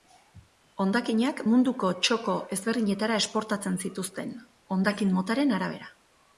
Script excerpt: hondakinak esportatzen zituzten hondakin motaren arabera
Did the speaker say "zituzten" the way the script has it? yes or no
yes